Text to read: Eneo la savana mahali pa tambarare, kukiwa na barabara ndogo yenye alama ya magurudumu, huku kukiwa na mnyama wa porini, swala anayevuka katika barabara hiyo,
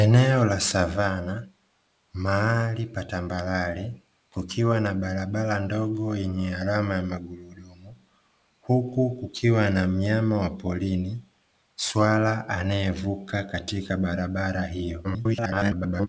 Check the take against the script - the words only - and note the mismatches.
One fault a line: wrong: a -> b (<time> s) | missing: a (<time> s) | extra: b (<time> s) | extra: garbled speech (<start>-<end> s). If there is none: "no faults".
extra: garbled speech (15.0-16.1 s)